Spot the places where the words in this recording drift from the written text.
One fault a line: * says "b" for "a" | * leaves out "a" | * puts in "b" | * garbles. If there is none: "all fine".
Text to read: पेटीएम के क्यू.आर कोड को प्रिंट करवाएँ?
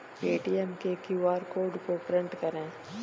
all fine